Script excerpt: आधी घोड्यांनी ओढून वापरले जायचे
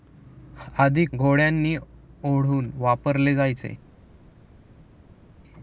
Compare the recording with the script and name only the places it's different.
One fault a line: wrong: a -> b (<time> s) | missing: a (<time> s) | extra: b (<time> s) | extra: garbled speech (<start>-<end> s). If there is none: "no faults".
no faults